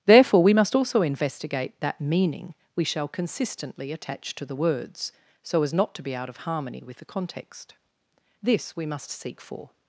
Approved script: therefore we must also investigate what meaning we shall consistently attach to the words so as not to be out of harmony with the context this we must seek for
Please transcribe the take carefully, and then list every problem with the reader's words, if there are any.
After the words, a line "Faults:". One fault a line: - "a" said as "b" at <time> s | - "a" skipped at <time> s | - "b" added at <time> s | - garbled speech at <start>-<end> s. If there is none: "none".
therefore we must also investigate that meaning we shall consistently attach to the words so as not to be out of harmony with the context this we must seek for
Faults:
- "what" said as "that" at 1.8 s